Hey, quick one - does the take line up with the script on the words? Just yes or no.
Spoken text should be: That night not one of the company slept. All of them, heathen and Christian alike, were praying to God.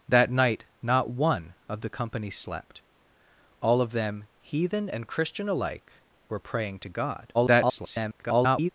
no